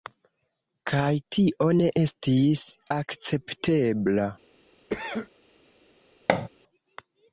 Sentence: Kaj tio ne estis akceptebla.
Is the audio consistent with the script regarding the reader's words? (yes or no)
yes